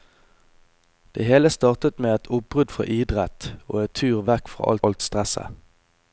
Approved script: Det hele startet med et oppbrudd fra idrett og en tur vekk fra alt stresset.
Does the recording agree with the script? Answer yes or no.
no